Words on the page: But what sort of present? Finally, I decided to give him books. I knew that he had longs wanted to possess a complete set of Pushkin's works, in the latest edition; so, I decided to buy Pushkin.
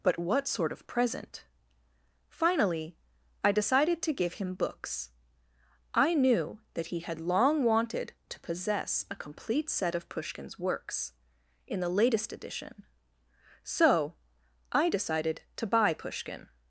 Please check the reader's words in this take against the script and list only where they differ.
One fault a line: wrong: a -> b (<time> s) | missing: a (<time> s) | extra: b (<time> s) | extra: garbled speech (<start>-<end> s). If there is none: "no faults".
wrong: longs -> long (7.2 s)